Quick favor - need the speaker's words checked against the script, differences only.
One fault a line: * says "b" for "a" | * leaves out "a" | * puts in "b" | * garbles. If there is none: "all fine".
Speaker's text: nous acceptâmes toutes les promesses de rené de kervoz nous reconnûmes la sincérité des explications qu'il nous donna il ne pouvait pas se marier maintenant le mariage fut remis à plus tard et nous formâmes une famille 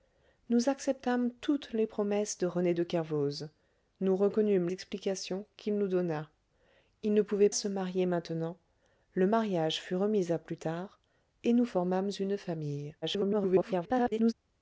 * leaves out "la sincérité des"
* leaves out "pas"
* garbles